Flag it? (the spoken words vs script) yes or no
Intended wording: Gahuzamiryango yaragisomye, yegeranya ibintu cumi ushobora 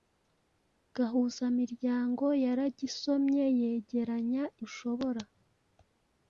yes